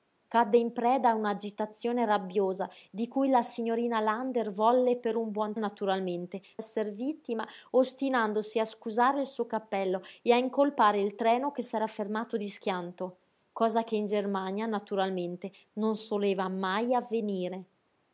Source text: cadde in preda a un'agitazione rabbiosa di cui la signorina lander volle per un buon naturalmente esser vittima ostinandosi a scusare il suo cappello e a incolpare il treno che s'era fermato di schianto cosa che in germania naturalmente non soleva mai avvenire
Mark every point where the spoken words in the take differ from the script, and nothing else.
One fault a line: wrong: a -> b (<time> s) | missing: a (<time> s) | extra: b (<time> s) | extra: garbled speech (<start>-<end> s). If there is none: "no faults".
no faults